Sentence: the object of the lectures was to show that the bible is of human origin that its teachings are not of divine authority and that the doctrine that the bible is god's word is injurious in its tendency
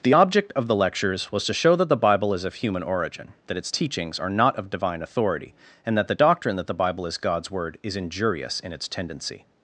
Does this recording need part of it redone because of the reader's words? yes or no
no